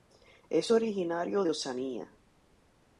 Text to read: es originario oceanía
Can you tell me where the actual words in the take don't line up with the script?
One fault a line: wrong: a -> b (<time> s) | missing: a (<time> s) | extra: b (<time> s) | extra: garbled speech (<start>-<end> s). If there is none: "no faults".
extra: de (1.4 s)